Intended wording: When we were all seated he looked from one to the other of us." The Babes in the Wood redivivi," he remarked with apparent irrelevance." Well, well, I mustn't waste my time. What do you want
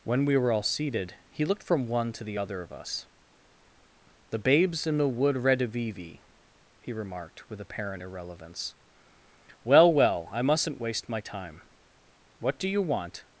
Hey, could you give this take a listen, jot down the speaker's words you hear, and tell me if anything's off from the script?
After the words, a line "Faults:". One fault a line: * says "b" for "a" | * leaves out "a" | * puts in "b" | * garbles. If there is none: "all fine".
When we were all seated he looked from one to the other of us." The Babes in the Wood redivivi," he remarked with apparent irrelevance." Well, well, I mustn't waste my time. What do you want
Faults:
all fine